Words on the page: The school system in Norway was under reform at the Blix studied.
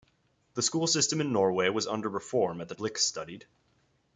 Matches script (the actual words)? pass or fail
pass